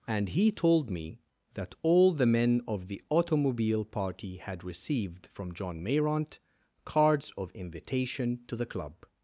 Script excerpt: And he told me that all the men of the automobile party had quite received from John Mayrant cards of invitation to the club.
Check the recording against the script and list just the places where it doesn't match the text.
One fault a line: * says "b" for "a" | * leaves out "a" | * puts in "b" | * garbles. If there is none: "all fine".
* leaves out "quite"